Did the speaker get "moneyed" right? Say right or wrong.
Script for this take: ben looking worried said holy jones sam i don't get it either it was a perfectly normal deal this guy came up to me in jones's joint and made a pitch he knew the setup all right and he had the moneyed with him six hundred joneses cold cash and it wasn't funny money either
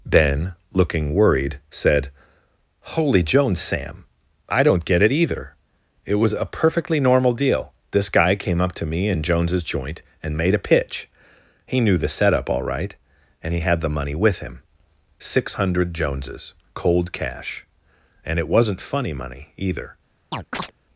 wrong